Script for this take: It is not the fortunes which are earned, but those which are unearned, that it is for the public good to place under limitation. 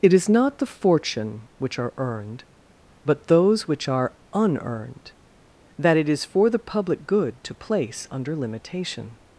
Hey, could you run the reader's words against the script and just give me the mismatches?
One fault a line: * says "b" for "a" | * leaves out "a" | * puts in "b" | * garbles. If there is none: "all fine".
* says "fortune" for "fortunes"